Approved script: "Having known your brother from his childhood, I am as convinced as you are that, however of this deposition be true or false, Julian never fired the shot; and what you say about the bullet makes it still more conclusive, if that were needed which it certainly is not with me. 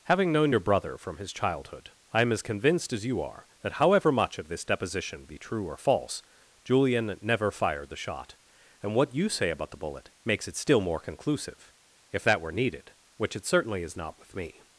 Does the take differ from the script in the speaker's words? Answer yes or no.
yes